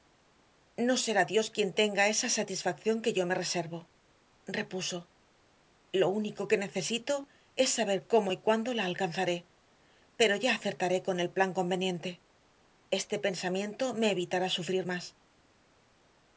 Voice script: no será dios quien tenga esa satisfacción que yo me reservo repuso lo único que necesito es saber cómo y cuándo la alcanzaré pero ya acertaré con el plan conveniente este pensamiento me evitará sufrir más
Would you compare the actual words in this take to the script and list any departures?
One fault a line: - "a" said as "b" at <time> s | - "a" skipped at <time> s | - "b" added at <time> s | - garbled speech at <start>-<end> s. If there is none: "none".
none